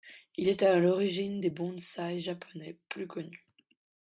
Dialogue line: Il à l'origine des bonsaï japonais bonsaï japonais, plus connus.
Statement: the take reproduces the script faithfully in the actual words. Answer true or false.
false